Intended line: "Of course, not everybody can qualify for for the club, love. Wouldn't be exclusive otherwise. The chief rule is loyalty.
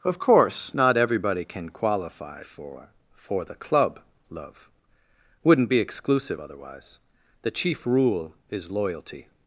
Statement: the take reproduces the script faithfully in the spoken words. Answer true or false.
true